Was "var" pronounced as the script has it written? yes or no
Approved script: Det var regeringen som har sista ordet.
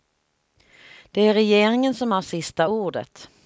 no